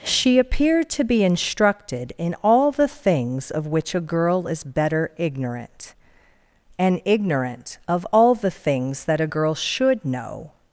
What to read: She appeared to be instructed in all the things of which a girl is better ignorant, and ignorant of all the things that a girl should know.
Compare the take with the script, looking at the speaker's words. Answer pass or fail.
pass